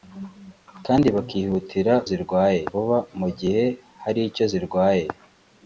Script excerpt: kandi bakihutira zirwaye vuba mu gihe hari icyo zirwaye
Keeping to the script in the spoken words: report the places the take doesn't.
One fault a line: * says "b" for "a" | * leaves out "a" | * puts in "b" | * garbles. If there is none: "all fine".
all fine